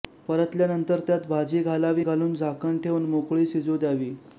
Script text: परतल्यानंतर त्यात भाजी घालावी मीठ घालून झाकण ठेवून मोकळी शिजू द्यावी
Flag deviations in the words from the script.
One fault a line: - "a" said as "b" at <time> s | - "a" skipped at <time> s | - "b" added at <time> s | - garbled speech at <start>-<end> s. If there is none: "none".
- "मीठ" skipped at 2.0 s